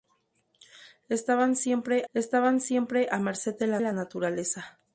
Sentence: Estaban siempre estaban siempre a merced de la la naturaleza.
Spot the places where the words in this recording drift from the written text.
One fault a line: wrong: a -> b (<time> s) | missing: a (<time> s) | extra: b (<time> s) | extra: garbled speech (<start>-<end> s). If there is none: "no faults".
no faults